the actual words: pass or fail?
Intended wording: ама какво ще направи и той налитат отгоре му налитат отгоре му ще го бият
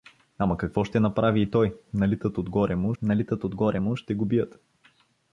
pass